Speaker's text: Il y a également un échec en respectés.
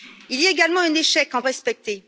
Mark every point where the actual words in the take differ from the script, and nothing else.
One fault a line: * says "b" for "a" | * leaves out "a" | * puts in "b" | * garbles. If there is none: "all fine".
all fine